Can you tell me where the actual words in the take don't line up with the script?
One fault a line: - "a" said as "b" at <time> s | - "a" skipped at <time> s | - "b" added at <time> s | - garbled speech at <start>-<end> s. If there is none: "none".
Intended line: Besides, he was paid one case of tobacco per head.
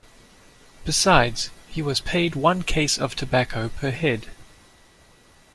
none